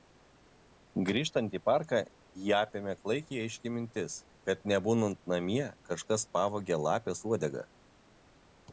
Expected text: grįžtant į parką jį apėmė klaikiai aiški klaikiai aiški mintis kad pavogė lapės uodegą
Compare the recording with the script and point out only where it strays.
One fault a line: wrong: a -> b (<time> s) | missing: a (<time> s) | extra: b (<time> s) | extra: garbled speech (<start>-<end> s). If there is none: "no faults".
wrong: klaikiai aiški mintis kad -> mintis kad nebūnant namie kažkas (3.8 s)